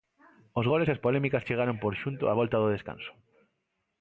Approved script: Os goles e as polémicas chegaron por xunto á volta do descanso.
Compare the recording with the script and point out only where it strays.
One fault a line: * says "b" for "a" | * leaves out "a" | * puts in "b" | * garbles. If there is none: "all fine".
all fine